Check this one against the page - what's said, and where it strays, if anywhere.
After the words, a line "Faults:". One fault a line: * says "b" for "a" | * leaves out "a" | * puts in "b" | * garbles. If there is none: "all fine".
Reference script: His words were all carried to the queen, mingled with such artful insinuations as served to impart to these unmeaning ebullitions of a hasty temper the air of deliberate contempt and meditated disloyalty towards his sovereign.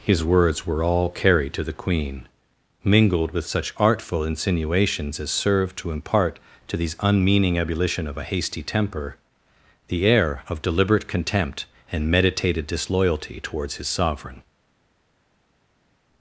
His words were all carried to the queen, mingled with such artful insinuations as served to impart to these unmeaning ebullition of a hasty temper the air of deliberate contempt and meditated disloyalty towards his sovereign.
Faults:
* says "ebullition" for "ebullitions"